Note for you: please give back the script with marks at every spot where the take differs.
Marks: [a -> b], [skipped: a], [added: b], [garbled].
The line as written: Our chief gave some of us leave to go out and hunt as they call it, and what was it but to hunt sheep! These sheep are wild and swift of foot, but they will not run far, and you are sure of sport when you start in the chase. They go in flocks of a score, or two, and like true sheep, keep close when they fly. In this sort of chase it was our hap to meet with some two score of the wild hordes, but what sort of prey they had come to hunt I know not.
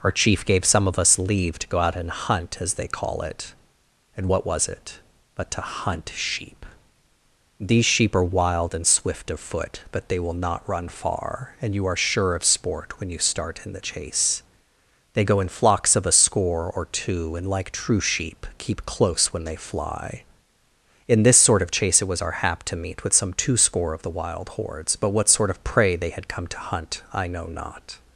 Our chief gave some of us leave to go out and hunt as they call it, and what was it but to hunt sheep! These sheep are wild and swift of foot, but they will not run far, and you are sure of sport when you start in the chase. They go in flocks of a score, or two, and like true sheep, keep close when they fly. In this sort of chase it was our hap to meet with some two score of the wild hordes, but what sort of prey they had come to hunt I know not.